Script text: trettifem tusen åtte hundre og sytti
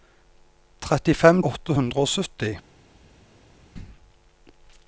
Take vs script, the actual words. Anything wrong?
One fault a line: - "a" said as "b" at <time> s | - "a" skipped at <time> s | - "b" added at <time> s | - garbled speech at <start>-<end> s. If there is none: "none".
- "tusen" skipped at 1.4 s